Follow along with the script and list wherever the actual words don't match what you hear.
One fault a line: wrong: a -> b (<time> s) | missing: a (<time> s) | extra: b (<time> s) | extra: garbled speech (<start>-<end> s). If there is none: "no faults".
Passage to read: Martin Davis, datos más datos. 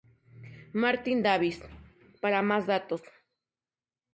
wrong: datos -> para (2.2 s)